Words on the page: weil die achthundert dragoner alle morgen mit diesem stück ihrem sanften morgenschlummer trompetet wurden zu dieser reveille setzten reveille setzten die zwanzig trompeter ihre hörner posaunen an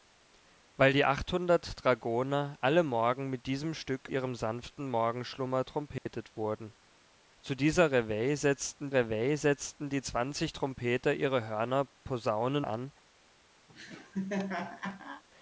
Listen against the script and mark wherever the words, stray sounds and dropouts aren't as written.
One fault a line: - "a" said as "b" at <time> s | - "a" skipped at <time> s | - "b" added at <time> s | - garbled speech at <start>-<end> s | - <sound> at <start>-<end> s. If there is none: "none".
- dropout at 6.0-6.1 s
- laugh at 13.7-15.2 s